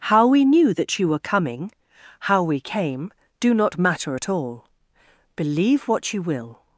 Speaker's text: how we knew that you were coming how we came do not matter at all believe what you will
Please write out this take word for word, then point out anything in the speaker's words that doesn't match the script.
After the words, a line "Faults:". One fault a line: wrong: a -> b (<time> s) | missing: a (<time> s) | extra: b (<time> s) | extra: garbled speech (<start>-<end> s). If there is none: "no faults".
how we knew that you were coming how we came do not matter at all believe what you will
Faults:
no faults